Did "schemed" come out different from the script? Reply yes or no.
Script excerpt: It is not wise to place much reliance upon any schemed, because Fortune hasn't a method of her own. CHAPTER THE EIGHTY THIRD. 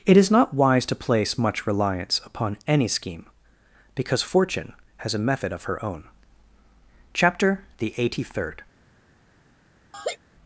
yes